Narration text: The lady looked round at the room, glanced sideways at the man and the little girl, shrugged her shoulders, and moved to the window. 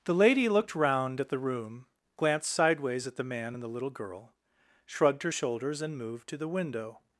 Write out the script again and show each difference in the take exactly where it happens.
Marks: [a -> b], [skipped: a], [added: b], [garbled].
The lady looked round at the room, glanced sideways at the man and the little girl, shrugged her shoulders, and moved to the window.